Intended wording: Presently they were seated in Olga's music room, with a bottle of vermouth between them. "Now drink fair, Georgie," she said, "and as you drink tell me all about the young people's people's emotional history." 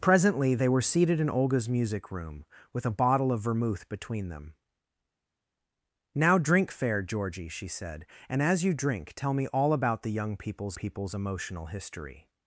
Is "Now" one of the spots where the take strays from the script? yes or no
no